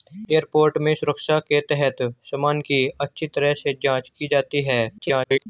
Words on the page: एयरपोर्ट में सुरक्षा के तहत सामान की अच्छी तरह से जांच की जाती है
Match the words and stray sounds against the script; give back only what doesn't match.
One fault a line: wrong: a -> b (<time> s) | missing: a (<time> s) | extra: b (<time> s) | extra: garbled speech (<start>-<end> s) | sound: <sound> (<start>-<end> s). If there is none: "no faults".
extra: garbled speech (5.0-5.5 s)